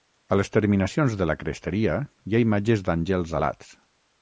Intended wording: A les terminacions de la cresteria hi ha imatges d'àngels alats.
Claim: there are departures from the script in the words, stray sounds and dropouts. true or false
false